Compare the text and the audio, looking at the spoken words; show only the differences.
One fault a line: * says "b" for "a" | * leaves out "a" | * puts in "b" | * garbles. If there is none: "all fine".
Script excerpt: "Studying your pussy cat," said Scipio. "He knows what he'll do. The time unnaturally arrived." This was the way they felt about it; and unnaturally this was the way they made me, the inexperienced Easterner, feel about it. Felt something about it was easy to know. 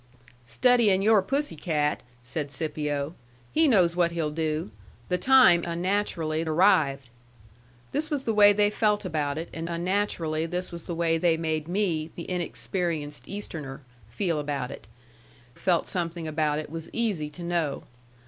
all fine